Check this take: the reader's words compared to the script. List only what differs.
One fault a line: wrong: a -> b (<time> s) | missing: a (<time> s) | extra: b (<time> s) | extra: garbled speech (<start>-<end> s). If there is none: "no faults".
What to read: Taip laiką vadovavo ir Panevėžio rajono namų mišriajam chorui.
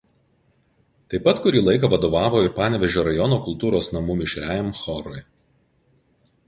extra: pat kurį (1.3 s)
extra: kultūros (3.5 s)